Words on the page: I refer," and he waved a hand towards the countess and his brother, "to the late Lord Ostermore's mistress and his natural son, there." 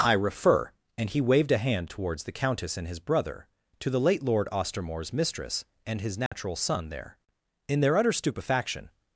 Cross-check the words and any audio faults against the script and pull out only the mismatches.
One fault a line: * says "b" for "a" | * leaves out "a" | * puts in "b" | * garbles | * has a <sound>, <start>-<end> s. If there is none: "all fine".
* has a dropout, 6.3-6.3 s
* puts in "In their utter stupefaction"